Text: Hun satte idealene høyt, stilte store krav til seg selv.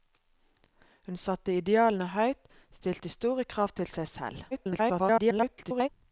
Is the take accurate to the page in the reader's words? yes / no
no